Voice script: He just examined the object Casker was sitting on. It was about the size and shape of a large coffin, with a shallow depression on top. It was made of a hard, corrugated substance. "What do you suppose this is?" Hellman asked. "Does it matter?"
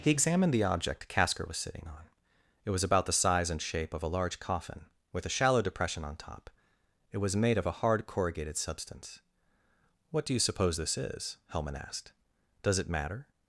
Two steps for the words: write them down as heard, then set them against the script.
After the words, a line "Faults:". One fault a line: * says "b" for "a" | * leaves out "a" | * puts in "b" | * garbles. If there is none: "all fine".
He examined the object Casker was sitting on. It was about the size and shape of a large coffin, with a shallow depression on top. It was made of a hard, corrugated substance. "What do you suppose this is?" Hellman asked. "Does it matter?"
Faults:
* leaves out "just"